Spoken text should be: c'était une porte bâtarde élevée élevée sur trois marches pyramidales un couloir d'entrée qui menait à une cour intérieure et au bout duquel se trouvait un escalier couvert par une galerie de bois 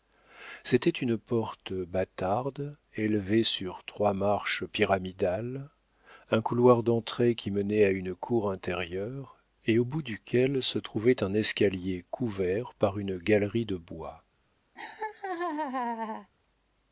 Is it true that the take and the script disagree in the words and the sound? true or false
true